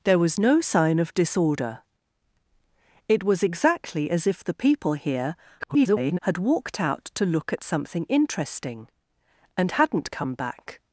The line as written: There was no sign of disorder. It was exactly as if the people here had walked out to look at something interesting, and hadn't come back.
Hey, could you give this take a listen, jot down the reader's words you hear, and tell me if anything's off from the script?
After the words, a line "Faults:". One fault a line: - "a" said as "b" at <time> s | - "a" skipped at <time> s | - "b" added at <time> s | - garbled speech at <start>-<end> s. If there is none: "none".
There was no sign of disorder. It was exactly as if the people here [garbled] had walked out to look at something interesting, and hadn't come back.
Faults:
- garbled speech at 5.6-6.2 s